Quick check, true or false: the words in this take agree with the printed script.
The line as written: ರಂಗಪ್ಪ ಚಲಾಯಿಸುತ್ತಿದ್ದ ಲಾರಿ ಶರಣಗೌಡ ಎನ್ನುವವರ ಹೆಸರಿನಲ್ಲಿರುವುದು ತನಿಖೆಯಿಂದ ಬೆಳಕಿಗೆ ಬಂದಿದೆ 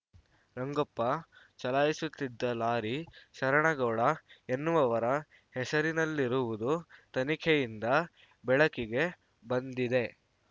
true